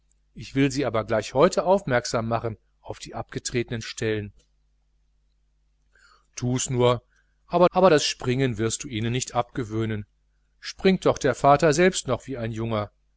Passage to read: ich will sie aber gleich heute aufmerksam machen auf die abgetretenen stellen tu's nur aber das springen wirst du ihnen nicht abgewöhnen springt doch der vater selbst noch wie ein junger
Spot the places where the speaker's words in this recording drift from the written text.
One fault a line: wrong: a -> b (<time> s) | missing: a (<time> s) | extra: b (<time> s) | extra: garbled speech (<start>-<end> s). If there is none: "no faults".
extra: aber (7.7 s)